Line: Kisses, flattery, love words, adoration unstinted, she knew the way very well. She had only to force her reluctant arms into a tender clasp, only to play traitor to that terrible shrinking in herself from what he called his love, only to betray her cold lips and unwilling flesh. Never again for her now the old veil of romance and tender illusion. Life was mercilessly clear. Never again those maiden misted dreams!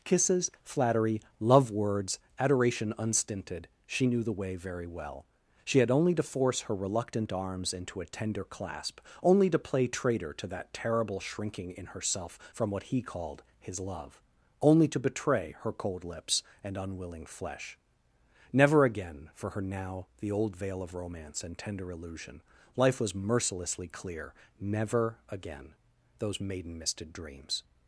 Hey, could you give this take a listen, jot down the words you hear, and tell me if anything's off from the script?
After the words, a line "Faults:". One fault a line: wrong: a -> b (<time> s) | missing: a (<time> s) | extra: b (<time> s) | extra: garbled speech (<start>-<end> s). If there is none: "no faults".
Kisses, flattery, love words, adoration unstinted, she knew the way very well. She had only to force her reluctant arms into a tender clasp, only to play traitor to that terrible shrinking in herself from what he called his love, only to betray her cold lips and unwilling flesh. Never again for her now the old veil of romance and tender illusion. Life was mercilessly clear. Never again those maiden misted dreams!
Faults:
no faults